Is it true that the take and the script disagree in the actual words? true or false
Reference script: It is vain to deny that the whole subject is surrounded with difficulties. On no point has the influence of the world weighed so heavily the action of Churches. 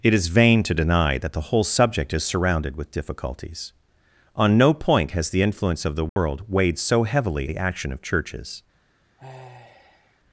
false